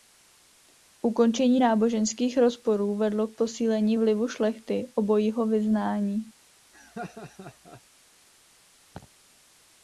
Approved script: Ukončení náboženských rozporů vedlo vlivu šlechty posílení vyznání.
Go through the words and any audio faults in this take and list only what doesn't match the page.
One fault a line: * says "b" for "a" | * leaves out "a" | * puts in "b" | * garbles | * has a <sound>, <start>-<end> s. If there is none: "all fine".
* puts in "k posílení"
* says "obojího" for "posílení"
* has a laugh, 6.7-7.8 s
* has a laugh, 8.9-9.1 s